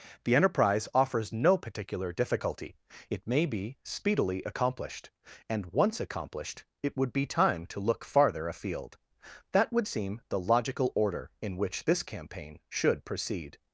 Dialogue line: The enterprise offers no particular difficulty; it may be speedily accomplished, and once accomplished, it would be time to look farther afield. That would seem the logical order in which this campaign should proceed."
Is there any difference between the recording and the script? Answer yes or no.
no